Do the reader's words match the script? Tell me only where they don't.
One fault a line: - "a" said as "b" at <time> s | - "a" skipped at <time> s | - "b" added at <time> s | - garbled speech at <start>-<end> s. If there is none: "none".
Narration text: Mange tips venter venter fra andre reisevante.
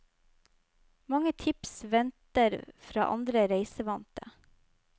- "venter" skipped at 2.6 s